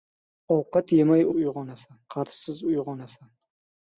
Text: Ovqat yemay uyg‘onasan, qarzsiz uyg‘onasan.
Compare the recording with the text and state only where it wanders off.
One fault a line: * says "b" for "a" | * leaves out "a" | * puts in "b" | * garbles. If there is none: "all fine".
all fine